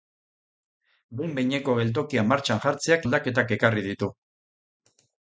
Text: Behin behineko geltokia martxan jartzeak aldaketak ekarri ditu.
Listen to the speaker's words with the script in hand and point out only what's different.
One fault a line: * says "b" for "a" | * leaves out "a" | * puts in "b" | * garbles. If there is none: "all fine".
all fine